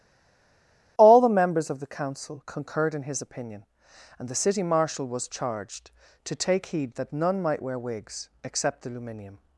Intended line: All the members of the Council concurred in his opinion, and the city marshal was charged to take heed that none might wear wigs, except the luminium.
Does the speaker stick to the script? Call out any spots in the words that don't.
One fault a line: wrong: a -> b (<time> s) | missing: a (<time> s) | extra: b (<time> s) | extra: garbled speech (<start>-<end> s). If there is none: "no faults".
no faults